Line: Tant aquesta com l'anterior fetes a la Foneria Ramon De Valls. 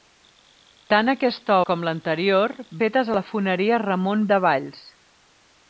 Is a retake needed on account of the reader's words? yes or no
no